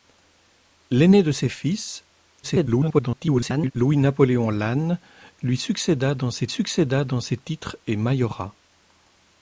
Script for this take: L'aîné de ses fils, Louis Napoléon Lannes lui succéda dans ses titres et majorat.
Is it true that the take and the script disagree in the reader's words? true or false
true